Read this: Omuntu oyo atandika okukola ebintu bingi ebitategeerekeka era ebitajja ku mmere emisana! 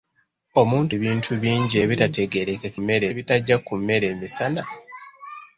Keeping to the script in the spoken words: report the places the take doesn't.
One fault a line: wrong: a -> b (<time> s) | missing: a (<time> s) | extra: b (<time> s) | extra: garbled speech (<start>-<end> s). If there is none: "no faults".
missing: oyo atandika okukola (0.9 s)
wrong: era -> mmere (2.8 s)